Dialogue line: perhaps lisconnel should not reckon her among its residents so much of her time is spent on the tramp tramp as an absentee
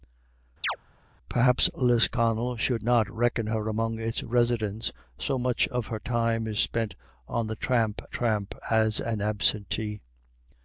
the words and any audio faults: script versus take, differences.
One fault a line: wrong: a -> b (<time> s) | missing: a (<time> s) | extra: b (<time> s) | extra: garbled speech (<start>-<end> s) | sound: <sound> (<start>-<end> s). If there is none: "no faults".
sound: chirp (0.6-0.8 s)